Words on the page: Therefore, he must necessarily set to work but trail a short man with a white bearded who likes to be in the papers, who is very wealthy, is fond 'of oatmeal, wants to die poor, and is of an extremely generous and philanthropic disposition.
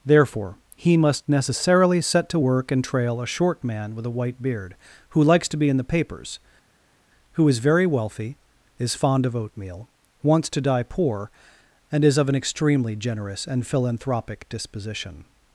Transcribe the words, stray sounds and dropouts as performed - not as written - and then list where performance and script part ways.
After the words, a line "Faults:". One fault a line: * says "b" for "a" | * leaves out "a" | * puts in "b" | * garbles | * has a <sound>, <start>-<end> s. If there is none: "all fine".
Therefore, he must necessarily set to work and trail a short man with a white beard who likes to be in the papers, who is very wealthy, is fond 'of oatmeal, wants to die poor, and is of an extremely generous and philanthropic disposition.
Faults:
* says "and" for "but"
* says "beard" for "bearded"